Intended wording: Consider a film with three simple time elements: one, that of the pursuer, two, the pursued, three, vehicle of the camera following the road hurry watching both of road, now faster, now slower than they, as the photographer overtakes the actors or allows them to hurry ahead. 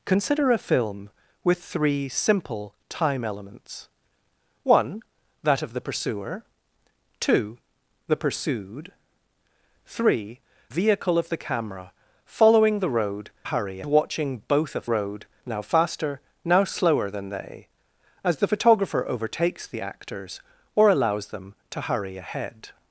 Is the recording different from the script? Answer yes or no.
no